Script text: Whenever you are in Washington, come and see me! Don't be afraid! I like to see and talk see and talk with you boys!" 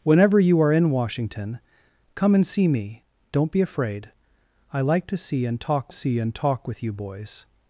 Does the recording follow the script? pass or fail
pass